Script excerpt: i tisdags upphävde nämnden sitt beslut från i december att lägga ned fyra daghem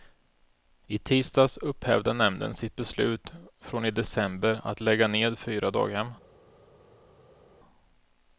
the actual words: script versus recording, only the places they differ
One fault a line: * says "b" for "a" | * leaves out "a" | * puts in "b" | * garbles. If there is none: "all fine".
all fine